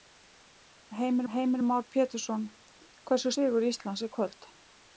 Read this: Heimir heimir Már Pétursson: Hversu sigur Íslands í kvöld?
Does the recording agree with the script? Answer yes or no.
yes